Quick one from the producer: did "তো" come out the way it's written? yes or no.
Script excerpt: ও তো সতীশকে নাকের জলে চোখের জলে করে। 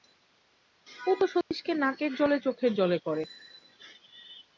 yes